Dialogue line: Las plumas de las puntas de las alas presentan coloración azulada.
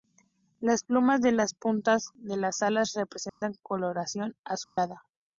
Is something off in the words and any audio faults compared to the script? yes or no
yes